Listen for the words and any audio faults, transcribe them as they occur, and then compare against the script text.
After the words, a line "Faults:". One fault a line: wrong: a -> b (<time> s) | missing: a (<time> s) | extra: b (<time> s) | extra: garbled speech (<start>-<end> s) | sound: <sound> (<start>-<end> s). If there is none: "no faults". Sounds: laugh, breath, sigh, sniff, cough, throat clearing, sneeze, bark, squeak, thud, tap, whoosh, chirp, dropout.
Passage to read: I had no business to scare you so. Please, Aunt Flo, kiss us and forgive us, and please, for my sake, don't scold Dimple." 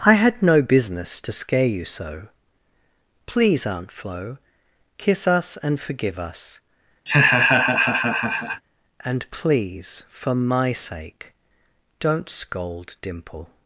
I had no business to scare you so. Please, Aunt Flo, kiss us and forgive us, and please, for my sake, don't scold Dimple."
Faults:
sound: laugh (7.1-8.6 s)